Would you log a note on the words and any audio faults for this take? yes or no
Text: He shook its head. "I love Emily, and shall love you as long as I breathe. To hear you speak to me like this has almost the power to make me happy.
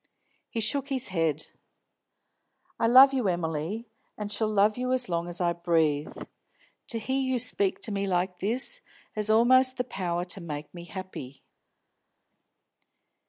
yes